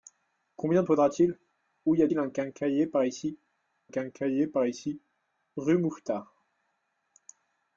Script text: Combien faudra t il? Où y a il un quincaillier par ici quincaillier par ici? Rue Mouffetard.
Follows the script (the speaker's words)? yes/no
yes